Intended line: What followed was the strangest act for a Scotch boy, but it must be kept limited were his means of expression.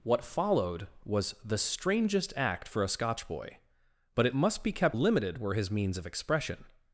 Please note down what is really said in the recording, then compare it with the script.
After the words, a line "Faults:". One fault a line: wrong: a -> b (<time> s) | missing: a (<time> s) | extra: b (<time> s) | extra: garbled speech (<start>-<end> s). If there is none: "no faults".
What followed was the strangest act for a Scotch boy, but it must be kept limited were his means of expression.
Faults:
no faults